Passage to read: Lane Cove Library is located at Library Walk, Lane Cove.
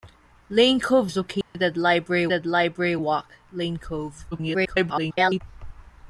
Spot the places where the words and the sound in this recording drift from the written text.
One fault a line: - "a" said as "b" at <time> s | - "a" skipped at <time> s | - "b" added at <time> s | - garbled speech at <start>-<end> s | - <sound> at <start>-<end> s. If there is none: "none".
- "Library" skipped at 1.1 s
- dropout at 1.4-1.5 s
- "at Library" added at 2.3 s
- garbled speech at 4.3-5.4 s